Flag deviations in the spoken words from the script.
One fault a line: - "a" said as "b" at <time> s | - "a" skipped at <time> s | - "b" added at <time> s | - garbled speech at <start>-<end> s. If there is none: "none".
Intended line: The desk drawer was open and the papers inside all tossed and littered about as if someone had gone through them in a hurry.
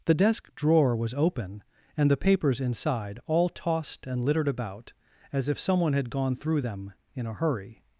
none